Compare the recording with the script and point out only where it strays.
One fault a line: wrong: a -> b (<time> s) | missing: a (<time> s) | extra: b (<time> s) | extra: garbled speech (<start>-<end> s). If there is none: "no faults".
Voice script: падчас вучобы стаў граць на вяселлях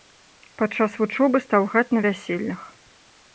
no faults